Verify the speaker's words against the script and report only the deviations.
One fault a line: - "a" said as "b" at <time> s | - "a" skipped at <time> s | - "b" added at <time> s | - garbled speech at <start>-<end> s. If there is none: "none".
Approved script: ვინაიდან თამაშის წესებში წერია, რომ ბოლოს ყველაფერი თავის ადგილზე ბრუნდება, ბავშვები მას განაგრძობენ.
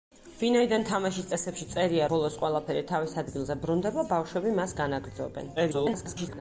- "რომ" skipped at 2.1 s
- garbled speech at 5.6-6.4 s